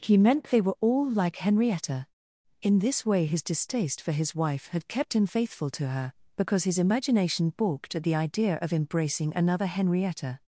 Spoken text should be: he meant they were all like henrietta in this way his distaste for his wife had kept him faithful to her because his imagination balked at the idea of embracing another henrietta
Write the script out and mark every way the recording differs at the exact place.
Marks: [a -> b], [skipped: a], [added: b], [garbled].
he meant they were all like henrietta in this way his distaste for his wife had kept him faithful to her because his imagination balked at the idea of embracing another henrietta